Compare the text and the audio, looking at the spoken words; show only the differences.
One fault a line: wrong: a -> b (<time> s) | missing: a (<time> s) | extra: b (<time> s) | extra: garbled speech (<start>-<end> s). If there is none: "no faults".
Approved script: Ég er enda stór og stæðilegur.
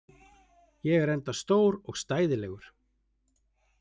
no faults